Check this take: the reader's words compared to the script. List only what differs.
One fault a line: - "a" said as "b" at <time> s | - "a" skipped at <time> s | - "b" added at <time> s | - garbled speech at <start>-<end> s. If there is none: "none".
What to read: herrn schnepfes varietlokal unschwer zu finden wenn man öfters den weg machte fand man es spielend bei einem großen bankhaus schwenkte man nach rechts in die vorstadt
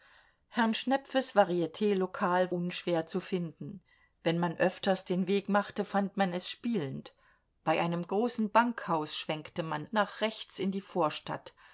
none